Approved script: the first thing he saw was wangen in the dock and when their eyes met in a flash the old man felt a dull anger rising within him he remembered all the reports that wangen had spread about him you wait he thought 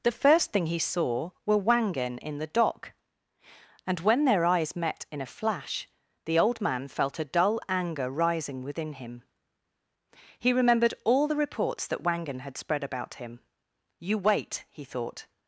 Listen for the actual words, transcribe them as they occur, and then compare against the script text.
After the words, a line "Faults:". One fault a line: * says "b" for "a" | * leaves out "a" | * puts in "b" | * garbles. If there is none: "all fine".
the first thing he saw were wangen in the dock and when their eyes met in a flash the old man felt a dull anger rising within him he remembered all the reports that wangen had spread about him you wait he thought
Faults:
* says "were" for "was"